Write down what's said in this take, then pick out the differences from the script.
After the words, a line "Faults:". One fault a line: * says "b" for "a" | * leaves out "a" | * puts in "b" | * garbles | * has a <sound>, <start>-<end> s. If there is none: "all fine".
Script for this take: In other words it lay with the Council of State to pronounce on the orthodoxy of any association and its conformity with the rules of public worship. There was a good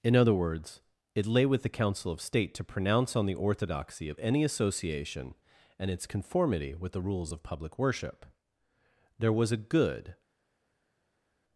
In other words it lay with the Council of State to pronounce on the orthodoxy of any association and its conformity with the rules of public worship. There was a good
Faults:
all fine